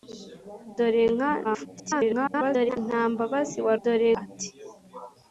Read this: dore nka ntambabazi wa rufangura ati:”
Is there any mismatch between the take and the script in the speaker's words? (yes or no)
yes